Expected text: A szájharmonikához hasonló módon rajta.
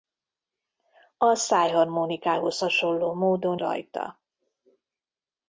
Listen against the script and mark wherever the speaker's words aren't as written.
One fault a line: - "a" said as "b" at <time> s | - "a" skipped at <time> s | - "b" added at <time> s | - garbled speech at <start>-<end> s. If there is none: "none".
none